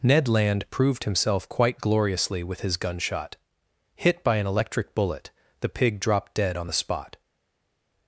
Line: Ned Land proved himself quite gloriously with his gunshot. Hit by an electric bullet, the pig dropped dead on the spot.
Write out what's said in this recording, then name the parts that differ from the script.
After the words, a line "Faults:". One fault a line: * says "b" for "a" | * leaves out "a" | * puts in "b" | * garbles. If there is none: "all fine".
Ned Land proved himself quite gloriously with his gunshot. Hit by an electric bullet, the pig dropped dead on the spot.
Faults:
all fine